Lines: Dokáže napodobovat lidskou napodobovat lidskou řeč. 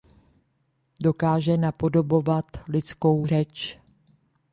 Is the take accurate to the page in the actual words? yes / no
no